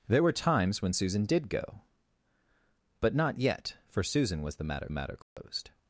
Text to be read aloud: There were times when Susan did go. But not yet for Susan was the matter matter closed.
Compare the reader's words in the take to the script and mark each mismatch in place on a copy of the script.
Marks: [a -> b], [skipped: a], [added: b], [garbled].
There were times when Susan did go. But not yet for Susan was the matter matter closed.